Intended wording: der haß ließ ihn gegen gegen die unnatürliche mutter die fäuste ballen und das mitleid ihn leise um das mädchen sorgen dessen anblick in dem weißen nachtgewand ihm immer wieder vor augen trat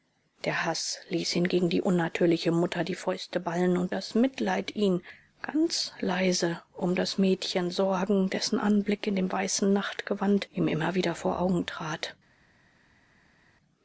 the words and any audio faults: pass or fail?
fail